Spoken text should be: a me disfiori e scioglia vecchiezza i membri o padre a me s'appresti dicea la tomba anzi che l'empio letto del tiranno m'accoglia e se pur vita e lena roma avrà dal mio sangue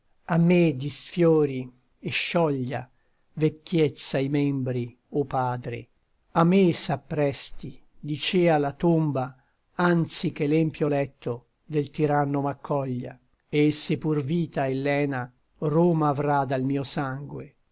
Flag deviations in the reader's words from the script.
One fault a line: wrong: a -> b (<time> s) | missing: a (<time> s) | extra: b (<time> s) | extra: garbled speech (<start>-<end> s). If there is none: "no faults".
no faults